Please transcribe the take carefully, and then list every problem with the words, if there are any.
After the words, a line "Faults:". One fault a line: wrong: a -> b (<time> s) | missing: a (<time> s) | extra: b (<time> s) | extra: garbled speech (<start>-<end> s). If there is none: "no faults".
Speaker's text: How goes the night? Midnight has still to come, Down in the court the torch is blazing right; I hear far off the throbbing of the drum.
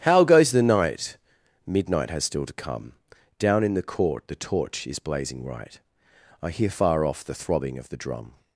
How goes the night? Midnight has still to come, Down in the court the torch is blazing right; I hear far off the throbbing of the drum.
Faults:
no faults